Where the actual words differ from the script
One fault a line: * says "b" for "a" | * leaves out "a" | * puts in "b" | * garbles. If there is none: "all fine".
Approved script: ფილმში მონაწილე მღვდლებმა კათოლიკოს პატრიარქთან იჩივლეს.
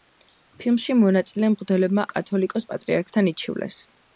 all fine